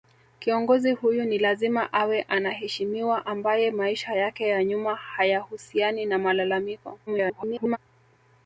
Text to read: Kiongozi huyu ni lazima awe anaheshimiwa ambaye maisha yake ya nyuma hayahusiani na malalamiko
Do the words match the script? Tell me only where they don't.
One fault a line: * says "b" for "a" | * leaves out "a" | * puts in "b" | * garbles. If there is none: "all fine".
* garbles